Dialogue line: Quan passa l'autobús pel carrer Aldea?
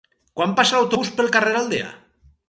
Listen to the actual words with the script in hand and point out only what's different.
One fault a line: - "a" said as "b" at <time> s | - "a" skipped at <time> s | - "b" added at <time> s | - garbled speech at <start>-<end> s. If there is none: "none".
none